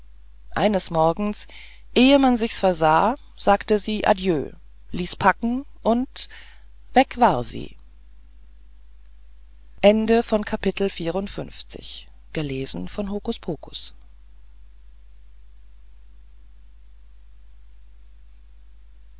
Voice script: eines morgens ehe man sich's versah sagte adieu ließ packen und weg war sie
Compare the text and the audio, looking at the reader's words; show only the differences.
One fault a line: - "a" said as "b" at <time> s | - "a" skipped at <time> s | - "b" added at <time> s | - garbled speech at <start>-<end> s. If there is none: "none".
- "sie" added at 3.8 s